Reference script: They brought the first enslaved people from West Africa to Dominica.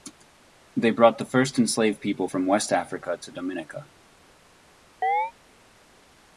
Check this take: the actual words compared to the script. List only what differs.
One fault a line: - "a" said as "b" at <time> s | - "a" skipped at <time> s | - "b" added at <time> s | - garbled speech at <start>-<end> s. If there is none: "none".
none